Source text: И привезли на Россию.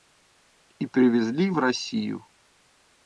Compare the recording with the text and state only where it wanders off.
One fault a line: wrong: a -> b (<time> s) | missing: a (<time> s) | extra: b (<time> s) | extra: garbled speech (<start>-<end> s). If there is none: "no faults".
wrong: на -> в (1.5 s)